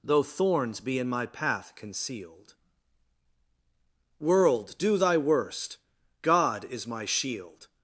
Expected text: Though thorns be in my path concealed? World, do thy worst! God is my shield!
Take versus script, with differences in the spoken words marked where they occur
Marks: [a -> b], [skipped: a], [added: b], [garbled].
Though thorns be in my path concealed? World, do thy worst! God is my shield!